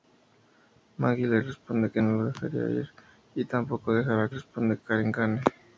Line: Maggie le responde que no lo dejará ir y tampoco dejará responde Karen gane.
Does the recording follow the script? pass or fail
pass